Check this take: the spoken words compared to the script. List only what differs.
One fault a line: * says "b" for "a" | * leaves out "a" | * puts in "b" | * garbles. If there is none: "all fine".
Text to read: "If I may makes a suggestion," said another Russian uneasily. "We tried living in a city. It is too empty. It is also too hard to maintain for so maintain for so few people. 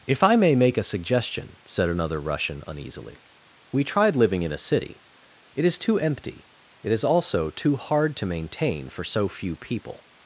* says "make" for "makes"
* leaves out "maintain for so"